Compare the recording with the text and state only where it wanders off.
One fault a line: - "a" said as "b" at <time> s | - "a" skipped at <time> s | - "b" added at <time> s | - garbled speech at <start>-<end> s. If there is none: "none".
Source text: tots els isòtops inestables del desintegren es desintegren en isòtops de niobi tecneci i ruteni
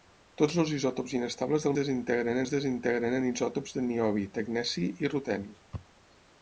none